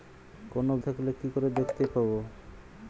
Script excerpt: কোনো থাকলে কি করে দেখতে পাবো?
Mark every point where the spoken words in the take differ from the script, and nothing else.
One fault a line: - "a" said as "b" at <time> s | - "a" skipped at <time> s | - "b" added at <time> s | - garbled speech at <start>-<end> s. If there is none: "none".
none